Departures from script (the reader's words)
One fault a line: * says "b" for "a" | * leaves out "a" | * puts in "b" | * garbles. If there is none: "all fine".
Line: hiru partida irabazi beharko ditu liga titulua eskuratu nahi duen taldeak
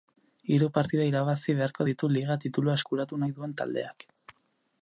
all fine